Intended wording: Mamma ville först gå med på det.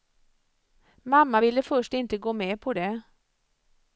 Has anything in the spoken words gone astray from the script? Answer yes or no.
yes